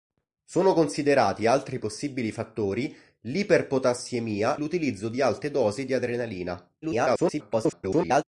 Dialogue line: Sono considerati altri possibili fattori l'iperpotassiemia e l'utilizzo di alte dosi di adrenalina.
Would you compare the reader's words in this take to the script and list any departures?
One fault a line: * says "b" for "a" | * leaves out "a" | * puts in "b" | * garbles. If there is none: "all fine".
* leaves out "e"
* garbles